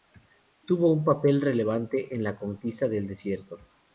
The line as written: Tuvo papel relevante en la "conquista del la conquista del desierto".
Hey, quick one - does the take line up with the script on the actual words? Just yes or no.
no